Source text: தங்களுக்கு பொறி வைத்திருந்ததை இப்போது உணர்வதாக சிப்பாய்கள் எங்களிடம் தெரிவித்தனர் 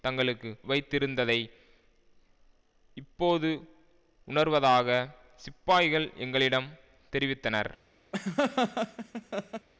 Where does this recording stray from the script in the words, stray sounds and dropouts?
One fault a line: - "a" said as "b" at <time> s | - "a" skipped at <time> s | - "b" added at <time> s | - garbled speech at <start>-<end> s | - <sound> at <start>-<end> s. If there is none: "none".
- "பொறி" skipped at 0.5 s
- laugh at 8.1-9.7 s